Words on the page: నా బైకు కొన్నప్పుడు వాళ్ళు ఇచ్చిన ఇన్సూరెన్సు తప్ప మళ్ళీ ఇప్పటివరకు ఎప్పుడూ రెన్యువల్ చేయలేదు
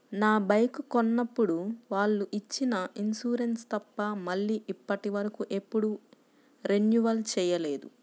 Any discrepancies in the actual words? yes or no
no